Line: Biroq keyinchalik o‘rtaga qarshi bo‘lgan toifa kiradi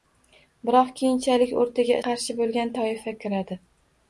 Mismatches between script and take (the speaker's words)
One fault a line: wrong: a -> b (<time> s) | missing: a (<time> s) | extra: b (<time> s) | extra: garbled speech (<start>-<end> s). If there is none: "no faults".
no faults